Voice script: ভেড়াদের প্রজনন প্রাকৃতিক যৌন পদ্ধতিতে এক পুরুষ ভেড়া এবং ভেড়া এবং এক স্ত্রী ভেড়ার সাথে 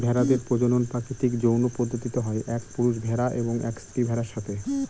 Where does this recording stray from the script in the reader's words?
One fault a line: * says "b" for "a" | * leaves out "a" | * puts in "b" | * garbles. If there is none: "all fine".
* puts in "হয়"
* leaves out "ভেড়া এবং"